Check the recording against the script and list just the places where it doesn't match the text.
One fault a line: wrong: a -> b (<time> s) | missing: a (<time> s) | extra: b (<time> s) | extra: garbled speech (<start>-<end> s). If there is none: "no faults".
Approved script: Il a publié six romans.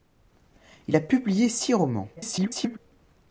extra: garbled speech (2.2-2.8 s)